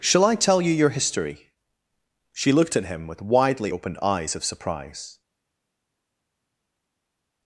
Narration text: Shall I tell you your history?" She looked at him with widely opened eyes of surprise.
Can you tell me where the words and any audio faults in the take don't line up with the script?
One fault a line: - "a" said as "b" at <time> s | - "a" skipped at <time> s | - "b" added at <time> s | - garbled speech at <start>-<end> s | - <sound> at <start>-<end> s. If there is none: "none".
none